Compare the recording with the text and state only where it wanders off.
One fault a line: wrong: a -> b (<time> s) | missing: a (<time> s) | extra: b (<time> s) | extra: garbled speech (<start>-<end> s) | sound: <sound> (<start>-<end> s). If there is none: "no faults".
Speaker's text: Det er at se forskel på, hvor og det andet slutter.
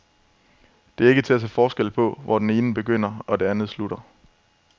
extra: ikke til (1.1 s)
extra: det ene begynder (2.4 s)